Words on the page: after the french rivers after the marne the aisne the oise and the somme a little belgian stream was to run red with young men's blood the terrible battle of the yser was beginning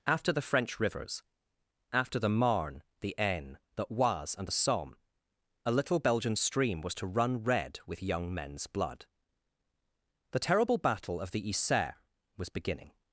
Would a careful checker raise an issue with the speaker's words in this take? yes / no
no